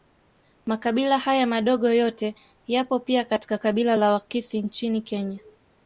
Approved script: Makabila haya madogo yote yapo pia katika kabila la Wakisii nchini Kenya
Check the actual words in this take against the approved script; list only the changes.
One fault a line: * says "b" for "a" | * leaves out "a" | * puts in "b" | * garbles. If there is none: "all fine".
all fine